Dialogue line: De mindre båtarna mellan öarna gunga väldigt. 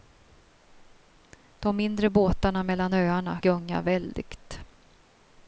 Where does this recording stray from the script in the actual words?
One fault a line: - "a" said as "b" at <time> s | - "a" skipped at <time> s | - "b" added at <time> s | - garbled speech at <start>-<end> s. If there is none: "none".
none